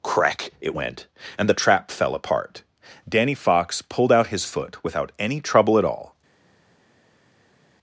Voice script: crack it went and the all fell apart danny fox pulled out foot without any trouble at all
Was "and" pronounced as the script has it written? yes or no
yes